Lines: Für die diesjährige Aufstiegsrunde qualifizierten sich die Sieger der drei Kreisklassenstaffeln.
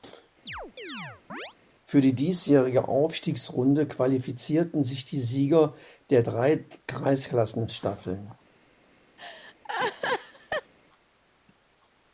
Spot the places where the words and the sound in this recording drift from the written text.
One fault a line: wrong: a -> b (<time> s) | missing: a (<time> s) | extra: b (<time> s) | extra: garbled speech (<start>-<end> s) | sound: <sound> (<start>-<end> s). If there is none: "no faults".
sound: chirp (0.5-1.5 s)
sound: laugh (9.2-10.7 s)